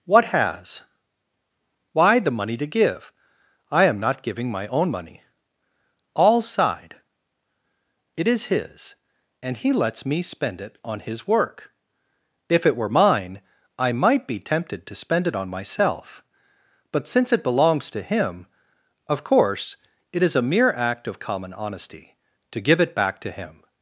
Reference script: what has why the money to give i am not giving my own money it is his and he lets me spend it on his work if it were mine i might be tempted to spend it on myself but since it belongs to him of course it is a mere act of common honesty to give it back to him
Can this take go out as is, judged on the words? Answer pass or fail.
fail